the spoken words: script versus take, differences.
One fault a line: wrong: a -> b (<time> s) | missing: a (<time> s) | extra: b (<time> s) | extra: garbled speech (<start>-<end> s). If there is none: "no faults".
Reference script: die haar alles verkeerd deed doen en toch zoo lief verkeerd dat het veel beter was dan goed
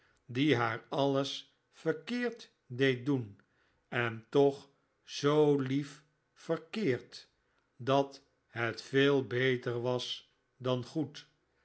no faults